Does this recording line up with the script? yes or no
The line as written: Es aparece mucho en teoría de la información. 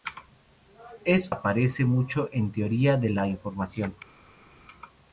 yes